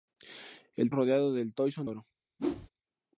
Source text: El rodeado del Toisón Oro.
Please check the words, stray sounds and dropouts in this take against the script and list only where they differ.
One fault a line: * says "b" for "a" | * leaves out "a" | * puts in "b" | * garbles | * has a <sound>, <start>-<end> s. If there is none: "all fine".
* has a whoosh, 2.4-2.7 s